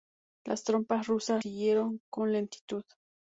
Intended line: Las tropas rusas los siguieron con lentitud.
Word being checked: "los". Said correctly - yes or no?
no